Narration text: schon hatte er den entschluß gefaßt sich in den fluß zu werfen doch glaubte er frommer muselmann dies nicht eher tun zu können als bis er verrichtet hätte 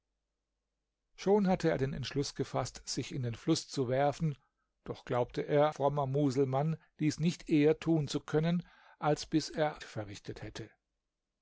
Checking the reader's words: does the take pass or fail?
pass